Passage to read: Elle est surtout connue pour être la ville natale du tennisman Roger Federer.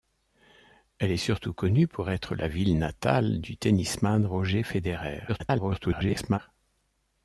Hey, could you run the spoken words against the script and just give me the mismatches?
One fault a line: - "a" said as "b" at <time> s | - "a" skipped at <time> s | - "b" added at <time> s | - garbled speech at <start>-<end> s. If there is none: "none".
- garbled speech at 5.3-6.4 s